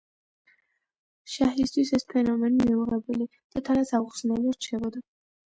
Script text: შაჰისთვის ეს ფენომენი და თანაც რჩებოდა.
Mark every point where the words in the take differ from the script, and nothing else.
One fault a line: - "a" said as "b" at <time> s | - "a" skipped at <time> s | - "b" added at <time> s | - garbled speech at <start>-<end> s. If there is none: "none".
- "მიუღებელი" added at 2.7 s
- "აუხსნელი" added at 4.0 s